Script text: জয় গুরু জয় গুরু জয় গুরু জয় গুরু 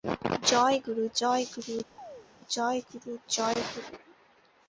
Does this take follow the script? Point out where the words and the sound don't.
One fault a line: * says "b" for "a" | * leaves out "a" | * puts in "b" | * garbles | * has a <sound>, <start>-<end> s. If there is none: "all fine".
* has a chirp, 2.0-2.3 s